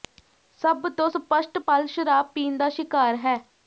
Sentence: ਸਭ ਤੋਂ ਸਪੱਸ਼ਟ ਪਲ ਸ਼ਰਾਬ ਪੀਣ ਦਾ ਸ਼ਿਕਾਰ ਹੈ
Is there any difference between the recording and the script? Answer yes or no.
no